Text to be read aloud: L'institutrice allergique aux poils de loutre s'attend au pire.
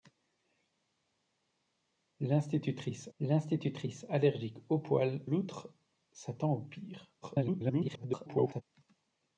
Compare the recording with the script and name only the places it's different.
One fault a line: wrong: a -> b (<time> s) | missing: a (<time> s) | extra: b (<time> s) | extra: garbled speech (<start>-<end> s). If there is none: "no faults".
extra: l'institutrice (3.2 s)
missing: de (5.2 s)
extra: garbled speech (7.2-8.6 s)